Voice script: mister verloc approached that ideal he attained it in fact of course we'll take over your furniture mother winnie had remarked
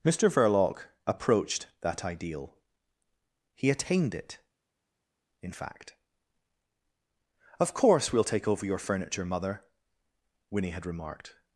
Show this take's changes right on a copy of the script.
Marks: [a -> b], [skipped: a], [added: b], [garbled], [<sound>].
mister verloc approached that ideal he attained it in fact of course we'll take over your furniture mother winnie had remarked